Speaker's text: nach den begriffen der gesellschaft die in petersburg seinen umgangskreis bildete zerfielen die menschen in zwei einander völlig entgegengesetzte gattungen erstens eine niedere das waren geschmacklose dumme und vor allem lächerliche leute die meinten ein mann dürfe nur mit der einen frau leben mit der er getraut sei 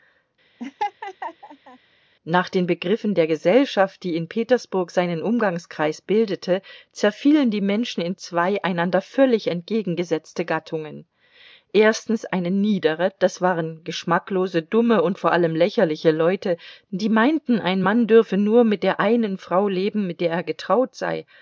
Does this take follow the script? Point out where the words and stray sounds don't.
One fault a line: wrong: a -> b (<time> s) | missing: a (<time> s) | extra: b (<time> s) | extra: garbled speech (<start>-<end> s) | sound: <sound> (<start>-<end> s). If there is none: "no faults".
sound: laugh (0.6-1.8 s)